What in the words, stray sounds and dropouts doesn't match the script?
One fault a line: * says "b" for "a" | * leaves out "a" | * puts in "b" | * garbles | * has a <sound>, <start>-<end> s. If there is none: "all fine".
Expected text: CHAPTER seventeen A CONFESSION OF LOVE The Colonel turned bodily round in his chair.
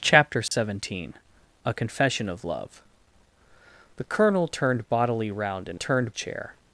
* has a dropout, 0.5-0.5 s
* says "turned" for "his"